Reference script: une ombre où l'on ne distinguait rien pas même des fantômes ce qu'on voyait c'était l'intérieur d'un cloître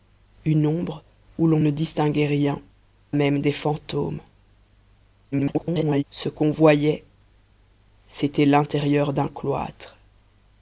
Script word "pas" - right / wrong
wrong